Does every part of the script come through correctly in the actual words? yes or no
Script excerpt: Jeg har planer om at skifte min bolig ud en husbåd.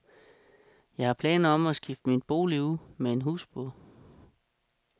no